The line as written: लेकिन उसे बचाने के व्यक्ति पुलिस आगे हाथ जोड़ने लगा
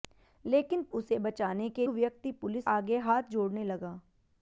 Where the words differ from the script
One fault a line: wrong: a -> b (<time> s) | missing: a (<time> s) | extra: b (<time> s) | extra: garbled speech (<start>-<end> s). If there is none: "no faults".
no faults